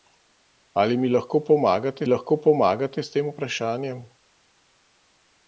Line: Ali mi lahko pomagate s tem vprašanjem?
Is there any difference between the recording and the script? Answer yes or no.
yes